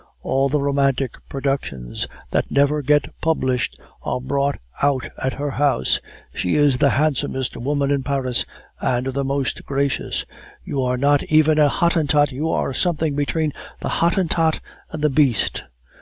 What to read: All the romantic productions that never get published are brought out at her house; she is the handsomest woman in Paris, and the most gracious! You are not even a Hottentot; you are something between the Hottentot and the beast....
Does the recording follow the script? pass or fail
pass